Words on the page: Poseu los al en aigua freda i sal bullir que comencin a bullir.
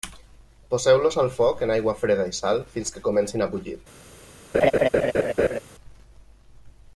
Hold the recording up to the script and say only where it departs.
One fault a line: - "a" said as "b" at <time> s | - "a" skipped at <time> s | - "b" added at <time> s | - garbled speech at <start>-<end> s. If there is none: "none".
- "foc" added at 1.4 s
- "bullir" said as "fins" at 2.7 s